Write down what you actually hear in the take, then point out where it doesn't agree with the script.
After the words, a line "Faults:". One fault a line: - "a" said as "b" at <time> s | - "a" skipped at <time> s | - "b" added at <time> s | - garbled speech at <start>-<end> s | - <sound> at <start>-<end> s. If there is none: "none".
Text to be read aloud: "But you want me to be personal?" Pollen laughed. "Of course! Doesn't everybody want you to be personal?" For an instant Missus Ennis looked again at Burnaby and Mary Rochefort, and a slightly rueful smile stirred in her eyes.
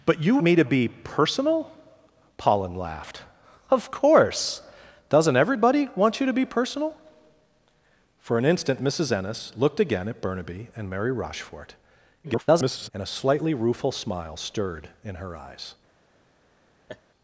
"But you me to be personal?" Pollen laughed. "Of course! Doesn't everybody want you to be personal?" For an instant Missus Ennis looked again at Burnaby and Mary Rochefort, [garbled] and a slightly rueful smile stirred in her eyes.
Faults:
- "want" skipped at 0.4 s
- garbled speech at 12.2-12.9 s
- laugh at 16.9-17.0 s